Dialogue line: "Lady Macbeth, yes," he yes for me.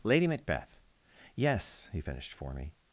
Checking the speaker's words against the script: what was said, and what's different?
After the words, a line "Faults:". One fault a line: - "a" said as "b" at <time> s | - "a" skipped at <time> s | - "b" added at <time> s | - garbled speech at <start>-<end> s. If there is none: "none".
"Lady Macbeth, yes," he finished for me.
Faults:
- "yes" said as "finished" at 2.0 s